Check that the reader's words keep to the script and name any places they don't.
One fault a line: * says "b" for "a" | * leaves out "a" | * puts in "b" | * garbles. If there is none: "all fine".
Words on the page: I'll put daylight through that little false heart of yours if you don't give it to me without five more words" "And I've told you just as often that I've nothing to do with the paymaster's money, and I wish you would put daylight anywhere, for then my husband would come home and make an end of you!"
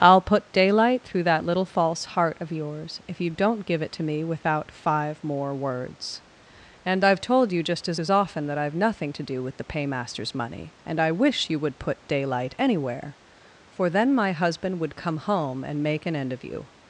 * puts in "as"